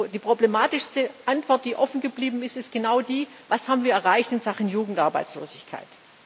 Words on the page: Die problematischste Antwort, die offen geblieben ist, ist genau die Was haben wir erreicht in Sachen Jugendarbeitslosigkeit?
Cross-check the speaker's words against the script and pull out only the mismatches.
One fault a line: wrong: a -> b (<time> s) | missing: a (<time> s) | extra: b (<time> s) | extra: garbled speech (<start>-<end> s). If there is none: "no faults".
no faults